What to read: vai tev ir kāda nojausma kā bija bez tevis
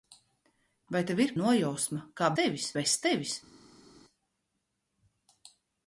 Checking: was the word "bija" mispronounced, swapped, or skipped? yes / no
yes